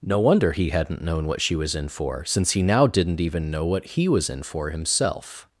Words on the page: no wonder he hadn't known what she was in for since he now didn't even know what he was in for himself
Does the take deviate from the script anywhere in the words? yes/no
no